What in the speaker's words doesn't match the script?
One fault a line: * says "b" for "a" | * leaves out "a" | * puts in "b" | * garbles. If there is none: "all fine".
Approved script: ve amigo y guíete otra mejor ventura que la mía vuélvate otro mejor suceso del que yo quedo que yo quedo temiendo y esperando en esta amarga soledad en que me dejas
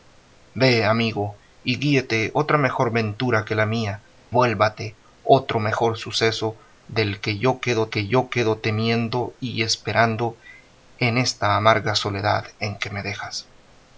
all fine